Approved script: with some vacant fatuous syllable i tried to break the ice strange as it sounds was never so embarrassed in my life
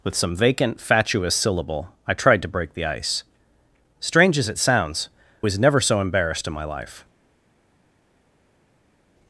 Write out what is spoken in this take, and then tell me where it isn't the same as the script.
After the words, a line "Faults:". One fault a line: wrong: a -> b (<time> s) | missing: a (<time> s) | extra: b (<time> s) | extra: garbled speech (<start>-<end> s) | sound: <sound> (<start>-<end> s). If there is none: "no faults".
with some vacant fatuous syllable i tried to break the ice strange as it sounds was never so embarrassed in my life
Faults:
no faults